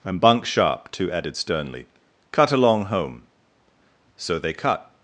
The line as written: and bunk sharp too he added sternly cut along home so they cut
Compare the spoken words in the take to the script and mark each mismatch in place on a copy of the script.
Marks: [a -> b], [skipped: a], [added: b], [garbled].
and bunk sharp too [skipped: he] added sternly cut along home so they cut